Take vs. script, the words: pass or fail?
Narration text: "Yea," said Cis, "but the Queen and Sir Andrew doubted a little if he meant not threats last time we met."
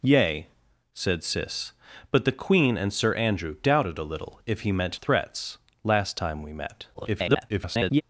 fail